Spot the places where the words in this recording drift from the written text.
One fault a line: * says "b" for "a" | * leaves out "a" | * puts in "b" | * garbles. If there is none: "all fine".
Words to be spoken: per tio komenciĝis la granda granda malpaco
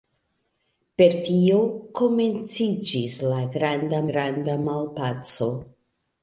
all fine